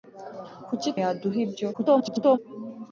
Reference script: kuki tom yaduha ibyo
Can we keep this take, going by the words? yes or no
no